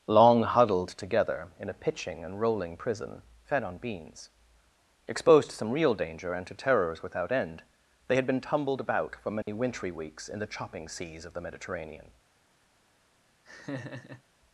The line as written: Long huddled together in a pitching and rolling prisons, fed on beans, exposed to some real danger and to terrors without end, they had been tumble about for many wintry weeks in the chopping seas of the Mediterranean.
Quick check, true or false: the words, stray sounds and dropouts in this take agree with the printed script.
false